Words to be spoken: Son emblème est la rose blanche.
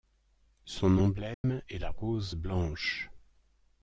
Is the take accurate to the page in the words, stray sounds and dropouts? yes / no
no